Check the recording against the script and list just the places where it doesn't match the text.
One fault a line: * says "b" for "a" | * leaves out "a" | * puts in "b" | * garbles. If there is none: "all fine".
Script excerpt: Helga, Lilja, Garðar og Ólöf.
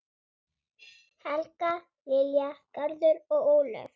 all fine